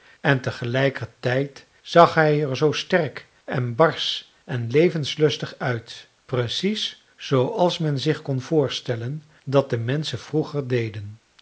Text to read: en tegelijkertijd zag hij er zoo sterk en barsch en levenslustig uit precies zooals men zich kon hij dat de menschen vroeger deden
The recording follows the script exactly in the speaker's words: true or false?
false